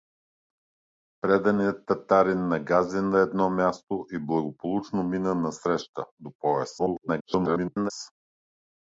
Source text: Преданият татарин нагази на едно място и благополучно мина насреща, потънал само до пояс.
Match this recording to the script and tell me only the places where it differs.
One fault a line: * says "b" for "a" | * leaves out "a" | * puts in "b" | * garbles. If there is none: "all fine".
* leaves out "потънал само"
* garbles